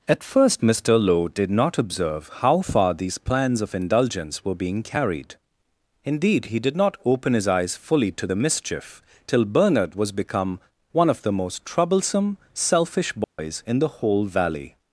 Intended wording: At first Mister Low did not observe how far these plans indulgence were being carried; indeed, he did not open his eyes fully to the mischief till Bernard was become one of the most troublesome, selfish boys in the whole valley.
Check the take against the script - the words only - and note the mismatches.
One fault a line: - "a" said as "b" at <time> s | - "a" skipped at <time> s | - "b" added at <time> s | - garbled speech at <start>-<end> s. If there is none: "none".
- "of" added at 3.6 s